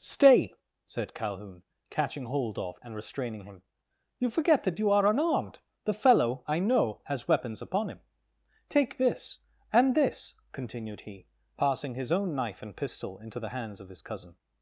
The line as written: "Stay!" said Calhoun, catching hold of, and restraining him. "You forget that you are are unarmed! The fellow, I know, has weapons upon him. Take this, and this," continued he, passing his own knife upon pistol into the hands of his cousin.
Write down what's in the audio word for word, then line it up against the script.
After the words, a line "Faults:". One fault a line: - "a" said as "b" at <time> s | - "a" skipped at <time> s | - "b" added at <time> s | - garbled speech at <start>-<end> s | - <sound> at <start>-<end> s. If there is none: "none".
"Stay!" said Calhoun, catching hold of, and restraining him. "You forget that you are unarmed! The fellow, I know, has weapons upon him. Take this, and this," continued he, passing his own knife and pistol into the hands of his cousin.
Faults:
- "are" skipped at 5.1 s
- "upon" said as "and" at 12.6 s